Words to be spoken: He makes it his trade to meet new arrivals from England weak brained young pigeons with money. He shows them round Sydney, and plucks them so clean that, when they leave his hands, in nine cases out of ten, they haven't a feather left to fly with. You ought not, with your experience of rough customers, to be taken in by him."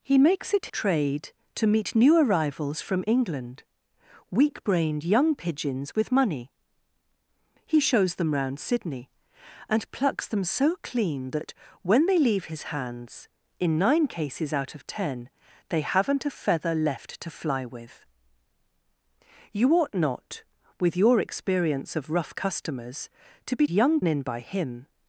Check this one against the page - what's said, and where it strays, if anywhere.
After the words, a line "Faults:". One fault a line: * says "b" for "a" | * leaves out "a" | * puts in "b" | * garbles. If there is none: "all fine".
He makes it trade to meet new arrivals from England weak brained young pigeons with money. He shows them round Sydney, and plucks them so clean that, when they leave his hands, in nine cases out of ten, they haven't a feather left to fly with. You ought not, with your experience of rough customers, to be young in by him."
Faults:
* leaves out "his"
* says "young" for "taken"